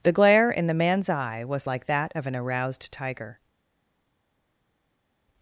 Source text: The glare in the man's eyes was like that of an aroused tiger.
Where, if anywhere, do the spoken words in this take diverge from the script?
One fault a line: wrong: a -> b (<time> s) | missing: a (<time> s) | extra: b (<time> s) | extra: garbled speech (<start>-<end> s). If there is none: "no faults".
wrong: eyes -> eye (1.1 s)